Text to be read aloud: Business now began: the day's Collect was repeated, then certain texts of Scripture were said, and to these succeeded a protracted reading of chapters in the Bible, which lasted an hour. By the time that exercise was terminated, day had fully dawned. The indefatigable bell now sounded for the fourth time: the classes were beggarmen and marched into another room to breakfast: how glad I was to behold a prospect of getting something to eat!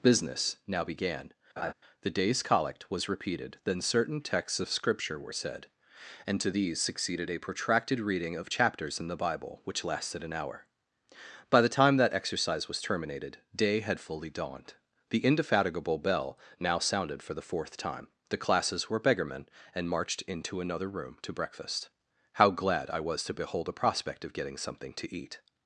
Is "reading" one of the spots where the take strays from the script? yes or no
no